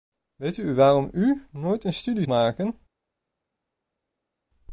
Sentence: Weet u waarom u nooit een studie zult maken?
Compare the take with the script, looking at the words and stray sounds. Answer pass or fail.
fail